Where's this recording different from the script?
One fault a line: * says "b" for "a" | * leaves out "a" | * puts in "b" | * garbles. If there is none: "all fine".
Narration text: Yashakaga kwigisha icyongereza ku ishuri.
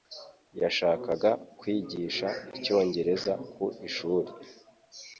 all fine